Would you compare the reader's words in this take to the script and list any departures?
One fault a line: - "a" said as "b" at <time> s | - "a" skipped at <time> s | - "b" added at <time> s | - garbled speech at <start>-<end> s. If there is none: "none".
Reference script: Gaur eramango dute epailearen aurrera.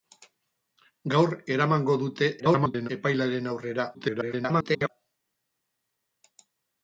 - garbled speech at 2.4-2.9 s
- garbled speech at 3.9-4.9 s